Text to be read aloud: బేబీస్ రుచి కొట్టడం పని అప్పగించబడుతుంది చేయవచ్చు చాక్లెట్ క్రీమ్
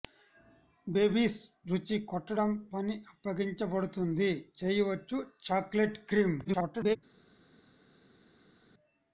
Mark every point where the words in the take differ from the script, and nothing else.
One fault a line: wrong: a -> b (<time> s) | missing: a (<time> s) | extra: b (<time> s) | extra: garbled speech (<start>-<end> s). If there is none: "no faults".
extra: garbled speech (6.4-7.0 s)